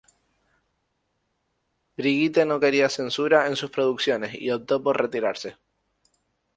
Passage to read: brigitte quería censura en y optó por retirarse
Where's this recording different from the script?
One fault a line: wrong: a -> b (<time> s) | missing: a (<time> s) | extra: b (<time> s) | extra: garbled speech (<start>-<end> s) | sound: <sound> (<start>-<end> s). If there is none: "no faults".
extra: no (2.5 s)
extra: sus producciones (3.6 s)